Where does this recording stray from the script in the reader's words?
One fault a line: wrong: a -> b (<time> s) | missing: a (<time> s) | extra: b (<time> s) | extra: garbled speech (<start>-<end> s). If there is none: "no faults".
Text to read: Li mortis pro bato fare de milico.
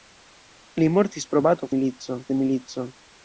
wrong: fare -> milico (1.8 s)